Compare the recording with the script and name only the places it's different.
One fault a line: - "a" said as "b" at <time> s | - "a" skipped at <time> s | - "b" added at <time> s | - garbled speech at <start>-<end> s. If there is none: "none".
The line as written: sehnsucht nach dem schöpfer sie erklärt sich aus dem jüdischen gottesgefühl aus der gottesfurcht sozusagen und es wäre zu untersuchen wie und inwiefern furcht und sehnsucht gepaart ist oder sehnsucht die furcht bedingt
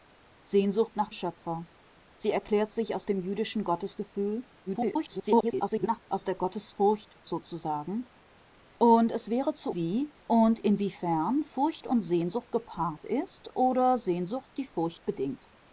- "dem" skipped at 1.1 s
- garbled speech at 4.7-6.0 s
- "untersuchen" skipped at 9.7 s